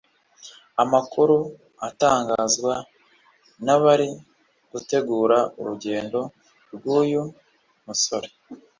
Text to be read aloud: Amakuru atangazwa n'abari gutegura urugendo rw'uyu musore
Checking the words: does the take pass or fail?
pass